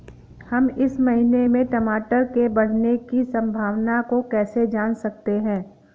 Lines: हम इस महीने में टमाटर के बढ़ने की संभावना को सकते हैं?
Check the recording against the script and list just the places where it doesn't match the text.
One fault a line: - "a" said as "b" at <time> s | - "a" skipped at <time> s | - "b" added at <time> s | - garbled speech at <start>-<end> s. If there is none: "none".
- "कैसे जान" added at 4.2 s